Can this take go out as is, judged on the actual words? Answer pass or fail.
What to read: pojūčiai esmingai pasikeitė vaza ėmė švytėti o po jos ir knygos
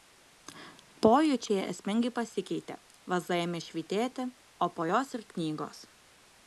pass